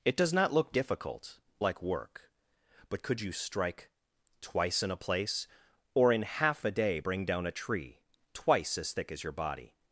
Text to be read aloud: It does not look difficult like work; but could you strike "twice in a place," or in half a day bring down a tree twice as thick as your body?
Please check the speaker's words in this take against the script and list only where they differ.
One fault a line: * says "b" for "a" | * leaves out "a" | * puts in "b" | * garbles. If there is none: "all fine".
all fine